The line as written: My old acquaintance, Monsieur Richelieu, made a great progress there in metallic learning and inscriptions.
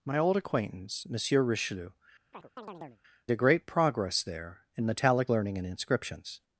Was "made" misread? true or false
true